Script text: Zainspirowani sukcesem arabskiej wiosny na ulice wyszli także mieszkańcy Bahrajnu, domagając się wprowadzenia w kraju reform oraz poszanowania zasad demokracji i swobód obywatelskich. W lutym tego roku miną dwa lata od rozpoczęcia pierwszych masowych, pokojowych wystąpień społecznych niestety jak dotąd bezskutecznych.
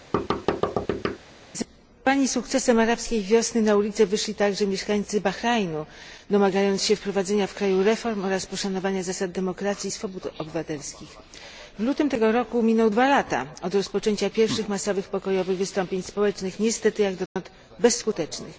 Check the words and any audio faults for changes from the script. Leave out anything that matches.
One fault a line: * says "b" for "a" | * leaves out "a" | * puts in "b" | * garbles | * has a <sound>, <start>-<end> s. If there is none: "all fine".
* has a thud, 0.1-1.2 s
* has a dropout, 17.3-17.4 s